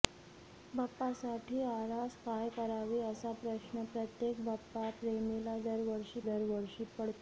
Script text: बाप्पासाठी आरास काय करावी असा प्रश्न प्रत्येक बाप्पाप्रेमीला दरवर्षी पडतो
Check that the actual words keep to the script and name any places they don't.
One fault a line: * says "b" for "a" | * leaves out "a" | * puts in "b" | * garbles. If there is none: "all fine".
* puts in "दरवर्षी"